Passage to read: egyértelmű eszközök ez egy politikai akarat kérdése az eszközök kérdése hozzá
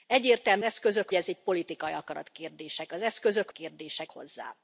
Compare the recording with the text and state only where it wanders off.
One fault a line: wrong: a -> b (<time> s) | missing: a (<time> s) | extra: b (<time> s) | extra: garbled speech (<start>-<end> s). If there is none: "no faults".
no faults